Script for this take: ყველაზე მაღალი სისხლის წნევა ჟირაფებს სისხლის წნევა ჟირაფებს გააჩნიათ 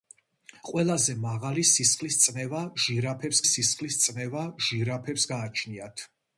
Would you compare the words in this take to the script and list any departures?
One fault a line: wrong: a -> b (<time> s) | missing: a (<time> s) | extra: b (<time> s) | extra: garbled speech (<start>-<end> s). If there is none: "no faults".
no faults